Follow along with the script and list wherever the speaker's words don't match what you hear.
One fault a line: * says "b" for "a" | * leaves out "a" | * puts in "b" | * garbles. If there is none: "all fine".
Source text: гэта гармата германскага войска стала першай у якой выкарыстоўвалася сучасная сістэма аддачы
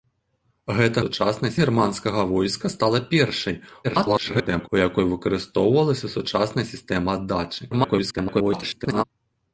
* says "сучасная" for "гармата"
* garbles
* garbles